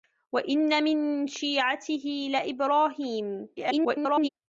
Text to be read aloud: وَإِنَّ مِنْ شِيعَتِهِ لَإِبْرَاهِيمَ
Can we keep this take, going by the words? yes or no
no